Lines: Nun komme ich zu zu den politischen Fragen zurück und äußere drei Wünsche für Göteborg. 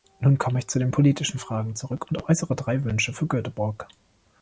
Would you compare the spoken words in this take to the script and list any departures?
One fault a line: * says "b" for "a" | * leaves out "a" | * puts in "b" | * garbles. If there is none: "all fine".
* leaves out "zu"